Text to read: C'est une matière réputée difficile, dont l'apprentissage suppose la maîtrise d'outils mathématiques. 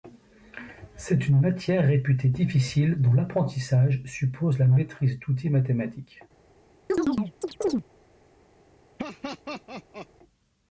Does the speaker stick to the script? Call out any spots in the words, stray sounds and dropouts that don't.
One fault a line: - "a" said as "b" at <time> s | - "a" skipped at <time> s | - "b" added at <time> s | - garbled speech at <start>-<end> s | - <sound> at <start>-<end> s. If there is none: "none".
- chirp at 6.9-7.8 s
- laugh at 9.0-10.1 s